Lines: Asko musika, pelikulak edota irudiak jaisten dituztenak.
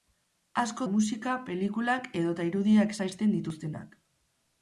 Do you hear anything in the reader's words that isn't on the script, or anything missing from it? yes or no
no